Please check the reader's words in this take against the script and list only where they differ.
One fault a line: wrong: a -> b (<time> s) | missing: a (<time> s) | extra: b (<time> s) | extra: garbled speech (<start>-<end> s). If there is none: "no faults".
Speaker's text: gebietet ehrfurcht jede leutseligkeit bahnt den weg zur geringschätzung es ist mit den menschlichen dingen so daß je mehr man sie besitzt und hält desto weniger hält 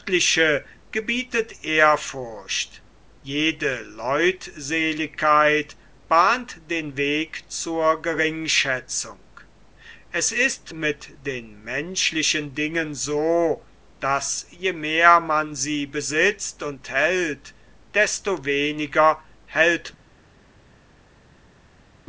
no faults